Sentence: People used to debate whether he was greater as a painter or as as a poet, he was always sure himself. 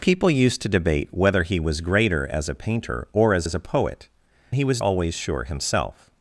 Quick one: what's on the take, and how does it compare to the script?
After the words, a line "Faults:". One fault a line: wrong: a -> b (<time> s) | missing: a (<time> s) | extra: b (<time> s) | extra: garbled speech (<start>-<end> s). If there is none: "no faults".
People used to debate whether he was greater as a painter or as as a poet, he was always sure himself.
Faults:
no faults